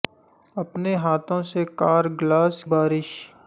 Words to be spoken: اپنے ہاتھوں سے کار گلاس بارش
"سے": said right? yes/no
yes